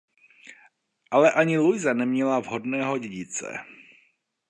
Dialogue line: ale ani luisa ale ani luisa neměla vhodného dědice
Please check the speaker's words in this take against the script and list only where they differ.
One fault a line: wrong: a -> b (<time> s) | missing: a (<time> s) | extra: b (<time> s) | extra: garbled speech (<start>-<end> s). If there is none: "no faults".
missing: ale ani luisa (1.9 s)